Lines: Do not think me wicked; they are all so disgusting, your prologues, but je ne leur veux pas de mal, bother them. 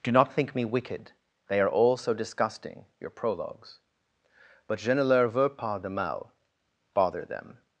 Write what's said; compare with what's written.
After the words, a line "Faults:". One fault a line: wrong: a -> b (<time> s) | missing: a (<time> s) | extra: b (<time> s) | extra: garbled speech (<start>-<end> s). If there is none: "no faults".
Do not think me wicked; they are all so disgusting, your prologues, but je ne leur veux pas de mal, bother them.
Faults:
no faults